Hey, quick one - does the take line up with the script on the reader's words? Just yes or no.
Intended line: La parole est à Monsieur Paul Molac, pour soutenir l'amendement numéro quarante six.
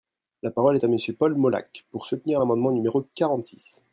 yes